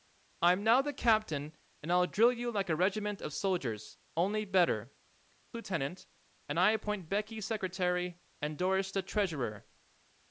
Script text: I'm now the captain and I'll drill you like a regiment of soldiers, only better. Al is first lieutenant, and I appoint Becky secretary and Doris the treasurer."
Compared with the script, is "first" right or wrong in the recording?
wrong